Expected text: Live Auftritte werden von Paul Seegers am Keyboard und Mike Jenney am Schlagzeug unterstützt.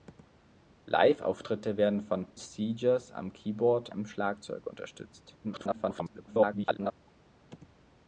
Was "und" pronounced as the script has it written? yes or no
no